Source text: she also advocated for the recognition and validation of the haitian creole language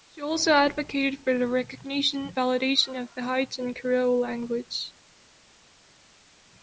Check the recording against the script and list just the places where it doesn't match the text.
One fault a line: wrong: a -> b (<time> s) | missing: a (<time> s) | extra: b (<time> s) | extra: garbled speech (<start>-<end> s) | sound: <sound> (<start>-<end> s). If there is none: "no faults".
missing: and (2.3 s)